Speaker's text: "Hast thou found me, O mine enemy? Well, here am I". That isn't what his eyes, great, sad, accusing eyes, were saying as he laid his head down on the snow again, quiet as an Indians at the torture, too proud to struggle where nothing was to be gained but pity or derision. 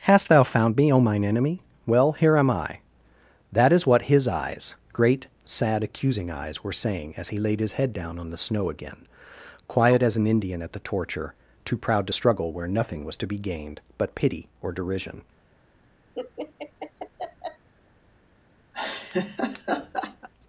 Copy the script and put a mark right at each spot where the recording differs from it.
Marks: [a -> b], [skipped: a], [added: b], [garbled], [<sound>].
"Hast thou found me, O mine enemy? Well, here am I". That [isn't -> is] what his eyes, great, sad, accusing eyes, were saying as he laid his head down on the snow again, quiet as an [Indians -> Indian] at the torture, too proud to struggle where nothing was to be gained but pity or derision. [laugh] [laugh]